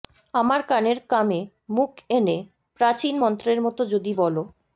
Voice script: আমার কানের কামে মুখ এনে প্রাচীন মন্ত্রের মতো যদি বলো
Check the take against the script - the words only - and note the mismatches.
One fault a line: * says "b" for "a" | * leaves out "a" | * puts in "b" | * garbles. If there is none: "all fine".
all fine